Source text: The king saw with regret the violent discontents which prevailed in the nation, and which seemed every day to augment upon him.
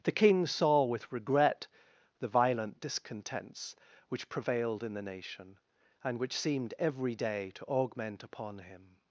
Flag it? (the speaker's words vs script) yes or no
no